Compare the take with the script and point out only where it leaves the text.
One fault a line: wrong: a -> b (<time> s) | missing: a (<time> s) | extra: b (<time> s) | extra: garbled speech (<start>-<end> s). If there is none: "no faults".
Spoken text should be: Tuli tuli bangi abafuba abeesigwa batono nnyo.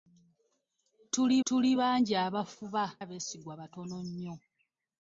no faults